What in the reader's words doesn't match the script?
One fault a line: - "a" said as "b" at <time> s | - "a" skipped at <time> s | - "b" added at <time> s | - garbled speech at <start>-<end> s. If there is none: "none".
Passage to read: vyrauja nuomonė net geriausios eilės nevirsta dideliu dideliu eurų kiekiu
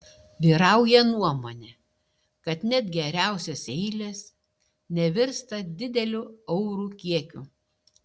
- "kad" added at 2.5 s
- "dideliu" skipped at 6.2 s